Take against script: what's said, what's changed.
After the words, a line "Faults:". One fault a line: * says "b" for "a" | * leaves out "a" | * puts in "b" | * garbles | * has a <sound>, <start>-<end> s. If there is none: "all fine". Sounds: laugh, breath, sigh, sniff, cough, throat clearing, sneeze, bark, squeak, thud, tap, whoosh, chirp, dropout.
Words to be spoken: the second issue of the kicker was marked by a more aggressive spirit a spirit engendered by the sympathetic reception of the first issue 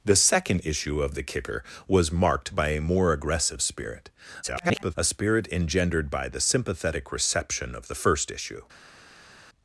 the second issue of the kicker was marked by a more aggressive spirit [garbled] a spirit engendered by the sympathetic reception of the first issue
Faults:
* garbles